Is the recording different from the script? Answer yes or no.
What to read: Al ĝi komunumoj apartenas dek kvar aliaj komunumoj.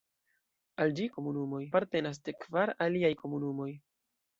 no